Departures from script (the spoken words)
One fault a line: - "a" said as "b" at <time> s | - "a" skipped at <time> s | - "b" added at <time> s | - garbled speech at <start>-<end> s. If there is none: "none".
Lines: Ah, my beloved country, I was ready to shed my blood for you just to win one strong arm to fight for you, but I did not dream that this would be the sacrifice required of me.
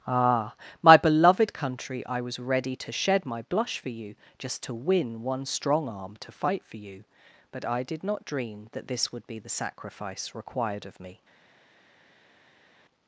- "blood" said as "blush" at 3.4 s